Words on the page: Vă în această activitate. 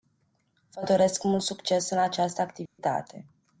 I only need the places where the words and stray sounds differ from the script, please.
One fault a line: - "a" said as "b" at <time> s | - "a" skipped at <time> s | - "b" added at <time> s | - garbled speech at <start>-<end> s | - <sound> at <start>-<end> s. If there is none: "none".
- "doresc mult succes" added at 0.8 s
- dropout at 2.7-2.8 s